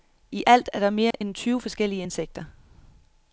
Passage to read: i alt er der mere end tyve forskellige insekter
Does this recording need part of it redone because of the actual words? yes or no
no